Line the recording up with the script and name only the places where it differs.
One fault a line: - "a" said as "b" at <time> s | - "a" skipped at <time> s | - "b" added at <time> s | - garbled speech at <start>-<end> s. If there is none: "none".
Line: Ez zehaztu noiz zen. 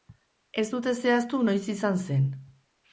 - "dute" added at 0.7 s
- "izan" added at 1.8 s